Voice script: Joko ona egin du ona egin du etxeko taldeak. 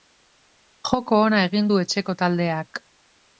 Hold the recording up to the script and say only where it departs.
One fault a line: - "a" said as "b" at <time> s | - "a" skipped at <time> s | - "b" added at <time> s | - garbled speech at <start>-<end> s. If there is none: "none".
- "ona egin du" skipped at 1.8 s